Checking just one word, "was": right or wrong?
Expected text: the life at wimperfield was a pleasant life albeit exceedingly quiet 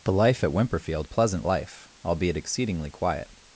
wrong